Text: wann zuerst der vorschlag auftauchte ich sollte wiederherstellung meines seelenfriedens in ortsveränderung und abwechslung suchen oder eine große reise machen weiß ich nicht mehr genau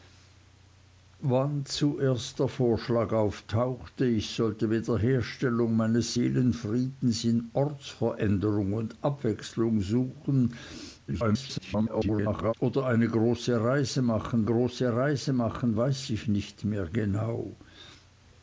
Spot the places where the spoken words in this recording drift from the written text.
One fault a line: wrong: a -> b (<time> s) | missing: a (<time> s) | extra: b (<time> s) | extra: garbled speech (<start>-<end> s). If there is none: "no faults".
extra: garbled speech (11.1-12.5 s)
extra: große reise machen (14.4 s)